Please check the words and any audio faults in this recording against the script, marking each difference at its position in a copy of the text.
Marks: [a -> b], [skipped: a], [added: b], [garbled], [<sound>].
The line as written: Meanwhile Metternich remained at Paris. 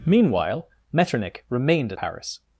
Meanwhile Metternich remained [skipped: at] Paris.